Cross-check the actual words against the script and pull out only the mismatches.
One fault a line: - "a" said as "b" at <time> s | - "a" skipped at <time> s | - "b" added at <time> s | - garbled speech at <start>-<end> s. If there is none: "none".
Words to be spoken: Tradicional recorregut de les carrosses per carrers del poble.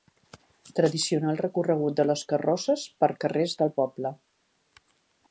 none